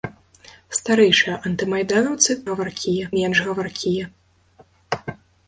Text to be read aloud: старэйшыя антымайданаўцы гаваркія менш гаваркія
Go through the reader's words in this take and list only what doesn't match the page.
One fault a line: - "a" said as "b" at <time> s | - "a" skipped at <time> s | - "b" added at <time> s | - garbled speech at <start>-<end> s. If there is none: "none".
none